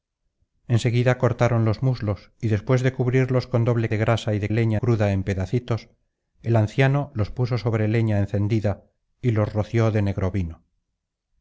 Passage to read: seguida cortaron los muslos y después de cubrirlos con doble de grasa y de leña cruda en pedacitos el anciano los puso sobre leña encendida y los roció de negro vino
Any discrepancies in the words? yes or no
no